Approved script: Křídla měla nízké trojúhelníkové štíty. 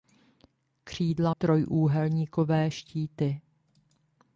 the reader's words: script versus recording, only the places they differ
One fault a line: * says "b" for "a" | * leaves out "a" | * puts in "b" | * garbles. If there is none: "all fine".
* leaves out "měla nízké"